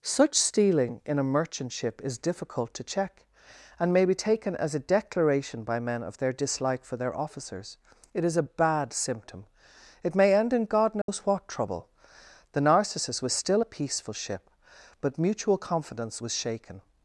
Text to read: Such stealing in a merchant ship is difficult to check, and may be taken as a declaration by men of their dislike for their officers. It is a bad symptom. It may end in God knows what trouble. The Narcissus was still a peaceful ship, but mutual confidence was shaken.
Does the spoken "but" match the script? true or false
true